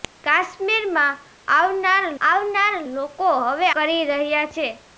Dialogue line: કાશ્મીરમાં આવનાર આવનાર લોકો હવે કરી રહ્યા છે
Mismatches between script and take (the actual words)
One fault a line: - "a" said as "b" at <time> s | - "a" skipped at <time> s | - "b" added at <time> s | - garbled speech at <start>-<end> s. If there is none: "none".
none